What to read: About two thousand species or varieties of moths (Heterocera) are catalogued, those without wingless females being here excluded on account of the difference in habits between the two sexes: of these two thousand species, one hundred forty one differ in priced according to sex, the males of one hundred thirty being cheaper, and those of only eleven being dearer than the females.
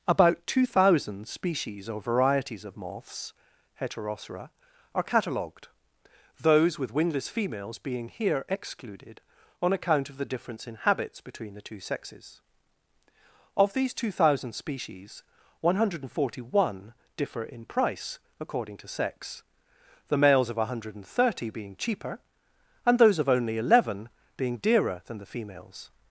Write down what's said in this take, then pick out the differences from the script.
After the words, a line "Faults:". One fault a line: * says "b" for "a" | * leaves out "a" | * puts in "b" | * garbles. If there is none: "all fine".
About two thousand species or varieties of moths (Heterocera) are catalogued, those with wingless females being here excluded on account of the difference in habits between the two sexes: of these two thousand species, one hundred forty one differ in price according to sex, the males of one hundred thirty being cheaper, and those of only eleven being dearer than the females.
Faults:
* says "with" for "without"
* says "price" for "priced"